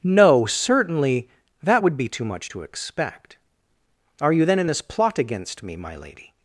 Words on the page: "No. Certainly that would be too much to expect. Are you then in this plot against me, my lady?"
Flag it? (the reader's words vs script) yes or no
no